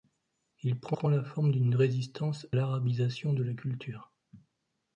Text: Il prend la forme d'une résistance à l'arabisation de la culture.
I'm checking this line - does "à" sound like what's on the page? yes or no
no